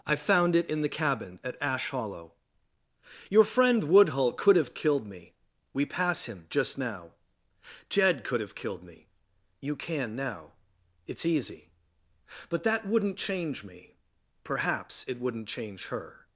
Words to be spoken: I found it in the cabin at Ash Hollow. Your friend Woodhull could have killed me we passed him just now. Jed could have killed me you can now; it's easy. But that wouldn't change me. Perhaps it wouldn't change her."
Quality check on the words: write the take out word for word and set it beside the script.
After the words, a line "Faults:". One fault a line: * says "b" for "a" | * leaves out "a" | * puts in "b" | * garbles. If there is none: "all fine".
I found it in the cabin at Ash Hollow. Your friend Woodhull could have killed me we pass him just now. Jed could have killed me you can now; it's easy. But that wouldn't change me. Perhaps it wouldn't change her."
Faults:
* says "pass" for "passed"